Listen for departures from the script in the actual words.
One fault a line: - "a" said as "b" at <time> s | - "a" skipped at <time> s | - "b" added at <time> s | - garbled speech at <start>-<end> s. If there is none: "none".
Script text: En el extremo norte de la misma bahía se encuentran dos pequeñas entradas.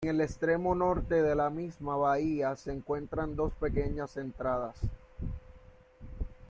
none